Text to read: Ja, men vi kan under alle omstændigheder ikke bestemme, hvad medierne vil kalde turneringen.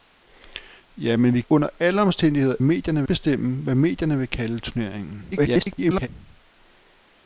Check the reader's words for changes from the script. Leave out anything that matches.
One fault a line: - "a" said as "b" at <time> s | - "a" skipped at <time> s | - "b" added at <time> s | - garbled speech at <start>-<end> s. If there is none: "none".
- "kan" skipped at 1.4 s
- "ikke" said as "medierne" at 2.6 s
- garbled speech at 5.3-6.1 s